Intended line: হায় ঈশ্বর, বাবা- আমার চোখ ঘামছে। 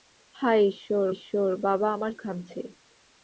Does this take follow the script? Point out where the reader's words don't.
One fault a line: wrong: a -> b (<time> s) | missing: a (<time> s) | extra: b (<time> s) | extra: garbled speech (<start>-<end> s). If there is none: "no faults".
extra: ঈশ্বর (1.1 s)
missing: চোখ (2.1 s)